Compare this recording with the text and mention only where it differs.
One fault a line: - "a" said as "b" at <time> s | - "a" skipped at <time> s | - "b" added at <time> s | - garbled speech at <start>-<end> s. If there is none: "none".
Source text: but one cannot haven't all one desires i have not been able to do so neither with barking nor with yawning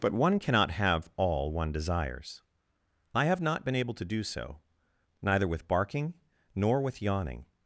- "haven't" said as "have" at 0.7 s